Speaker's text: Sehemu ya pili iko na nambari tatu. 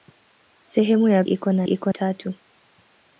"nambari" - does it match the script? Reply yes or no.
no